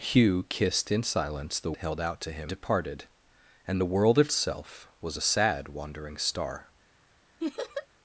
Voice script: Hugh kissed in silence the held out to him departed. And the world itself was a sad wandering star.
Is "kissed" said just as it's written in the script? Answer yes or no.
yes